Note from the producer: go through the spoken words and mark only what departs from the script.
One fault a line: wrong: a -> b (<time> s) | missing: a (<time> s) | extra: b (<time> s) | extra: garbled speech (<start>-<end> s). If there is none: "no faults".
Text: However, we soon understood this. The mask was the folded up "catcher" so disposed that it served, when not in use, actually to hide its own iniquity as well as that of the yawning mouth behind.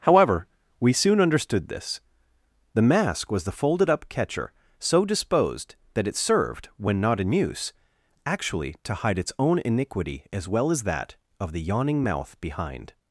no faults